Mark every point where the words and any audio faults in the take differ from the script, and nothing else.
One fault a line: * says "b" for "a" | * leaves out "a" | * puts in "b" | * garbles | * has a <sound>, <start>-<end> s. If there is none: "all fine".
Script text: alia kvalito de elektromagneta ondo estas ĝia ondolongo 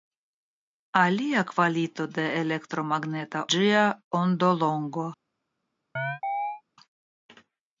* leaves out "ondo estas"
* has a chirp, 6.0-6.6 s